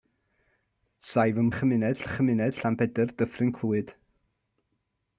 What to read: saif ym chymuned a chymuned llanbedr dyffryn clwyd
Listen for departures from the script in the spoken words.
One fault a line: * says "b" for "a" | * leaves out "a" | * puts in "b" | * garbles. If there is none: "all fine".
all fine